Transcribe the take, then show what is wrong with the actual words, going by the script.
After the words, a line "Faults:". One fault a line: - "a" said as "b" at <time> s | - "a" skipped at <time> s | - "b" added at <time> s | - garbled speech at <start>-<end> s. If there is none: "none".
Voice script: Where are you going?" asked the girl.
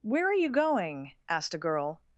Where are you going?" asked a girl.
Faults:
- "the" said as "a" at 1.5 s